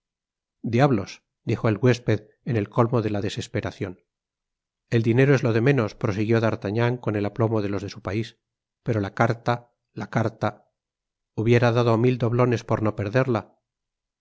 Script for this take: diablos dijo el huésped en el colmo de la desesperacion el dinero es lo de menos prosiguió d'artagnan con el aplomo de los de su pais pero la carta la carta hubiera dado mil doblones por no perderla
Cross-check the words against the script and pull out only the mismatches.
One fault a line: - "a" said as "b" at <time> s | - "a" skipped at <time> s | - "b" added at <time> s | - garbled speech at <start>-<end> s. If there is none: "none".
none